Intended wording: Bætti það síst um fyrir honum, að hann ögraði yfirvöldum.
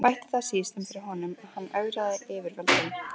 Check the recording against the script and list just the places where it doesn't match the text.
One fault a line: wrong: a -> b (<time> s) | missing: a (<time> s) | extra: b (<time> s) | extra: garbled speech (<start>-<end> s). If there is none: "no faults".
no faults